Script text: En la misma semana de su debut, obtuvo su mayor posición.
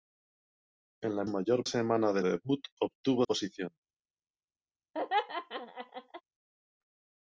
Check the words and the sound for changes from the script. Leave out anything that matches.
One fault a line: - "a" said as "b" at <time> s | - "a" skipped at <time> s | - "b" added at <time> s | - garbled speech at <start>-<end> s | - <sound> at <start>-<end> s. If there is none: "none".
- "misma" said as "mayor" at 1.3 s
- "su" skipped at 2.2 s
- "su mayor" skipped at 3.3 s
- laugh at 4.9-6.2 s